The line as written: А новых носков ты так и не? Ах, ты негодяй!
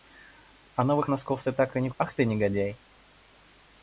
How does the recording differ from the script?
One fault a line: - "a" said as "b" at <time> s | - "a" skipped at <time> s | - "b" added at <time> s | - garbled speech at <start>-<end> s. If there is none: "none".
none